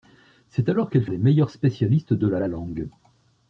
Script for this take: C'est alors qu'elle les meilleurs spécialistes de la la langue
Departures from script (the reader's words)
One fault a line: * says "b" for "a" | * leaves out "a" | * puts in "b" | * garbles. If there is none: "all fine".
all fine